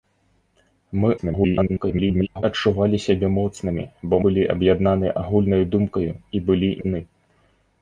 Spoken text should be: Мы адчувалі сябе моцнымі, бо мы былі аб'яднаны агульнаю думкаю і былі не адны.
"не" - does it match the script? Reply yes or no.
no